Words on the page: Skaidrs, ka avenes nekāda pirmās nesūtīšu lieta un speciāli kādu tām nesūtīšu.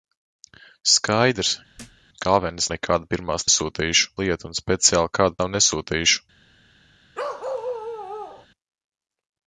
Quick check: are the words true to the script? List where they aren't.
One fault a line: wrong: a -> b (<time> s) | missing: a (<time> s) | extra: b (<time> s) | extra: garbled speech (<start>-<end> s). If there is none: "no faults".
no faults